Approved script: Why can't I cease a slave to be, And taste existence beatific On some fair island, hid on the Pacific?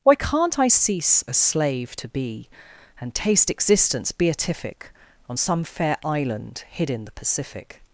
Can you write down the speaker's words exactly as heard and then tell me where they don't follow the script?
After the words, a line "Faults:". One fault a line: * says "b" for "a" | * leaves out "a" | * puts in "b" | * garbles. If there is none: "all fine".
Why can't I cease a slave to be, And taste existence beatific On some fair island, hid in the Pacific?
Faults:
* says "in" for "on"